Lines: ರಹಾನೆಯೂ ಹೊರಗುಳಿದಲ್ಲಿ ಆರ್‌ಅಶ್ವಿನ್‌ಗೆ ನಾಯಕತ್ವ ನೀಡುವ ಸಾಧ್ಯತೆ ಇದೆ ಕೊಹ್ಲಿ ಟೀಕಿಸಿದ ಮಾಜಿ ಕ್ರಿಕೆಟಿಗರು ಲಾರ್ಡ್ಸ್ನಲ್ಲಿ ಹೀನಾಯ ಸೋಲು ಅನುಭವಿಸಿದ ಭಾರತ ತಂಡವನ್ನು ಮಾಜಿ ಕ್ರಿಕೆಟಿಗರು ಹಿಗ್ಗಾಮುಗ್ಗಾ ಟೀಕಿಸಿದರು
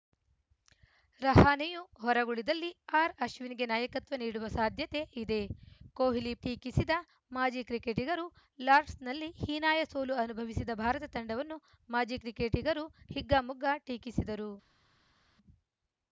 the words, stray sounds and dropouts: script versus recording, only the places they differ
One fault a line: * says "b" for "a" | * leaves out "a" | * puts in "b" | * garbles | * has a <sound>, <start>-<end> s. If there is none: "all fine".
all fine